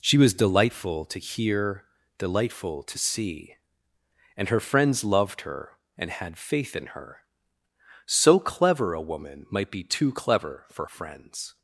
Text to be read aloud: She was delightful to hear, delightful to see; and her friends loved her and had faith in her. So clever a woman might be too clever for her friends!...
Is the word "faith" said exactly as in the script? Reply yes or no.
yes